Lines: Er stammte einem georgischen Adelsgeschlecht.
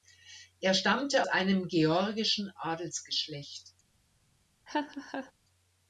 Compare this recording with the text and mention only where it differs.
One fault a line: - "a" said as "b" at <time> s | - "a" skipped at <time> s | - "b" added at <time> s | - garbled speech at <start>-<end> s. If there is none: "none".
none